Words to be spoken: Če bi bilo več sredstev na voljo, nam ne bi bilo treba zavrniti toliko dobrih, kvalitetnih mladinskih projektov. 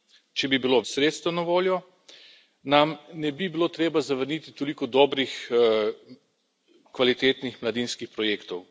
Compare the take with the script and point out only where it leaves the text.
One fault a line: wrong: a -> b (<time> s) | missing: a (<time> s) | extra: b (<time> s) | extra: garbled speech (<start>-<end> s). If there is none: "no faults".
missing: več (0.8 s)